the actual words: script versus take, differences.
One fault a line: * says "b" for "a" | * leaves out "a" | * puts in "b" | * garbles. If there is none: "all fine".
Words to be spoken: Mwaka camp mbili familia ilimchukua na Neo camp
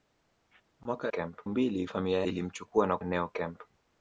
all fine